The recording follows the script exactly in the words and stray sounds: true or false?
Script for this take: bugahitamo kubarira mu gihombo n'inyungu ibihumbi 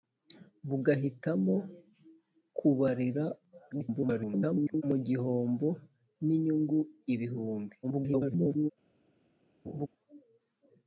false